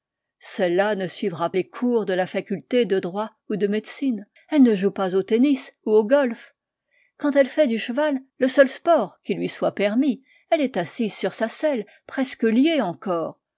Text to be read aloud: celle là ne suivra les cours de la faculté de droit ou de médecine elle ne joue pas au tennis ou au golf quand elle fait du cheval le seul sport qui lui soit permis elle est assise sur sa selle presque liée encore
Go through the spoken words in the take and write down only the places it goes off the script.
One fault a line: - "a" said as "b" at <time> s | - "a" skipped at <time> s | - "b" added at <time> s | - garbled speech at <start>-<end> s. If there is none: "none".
none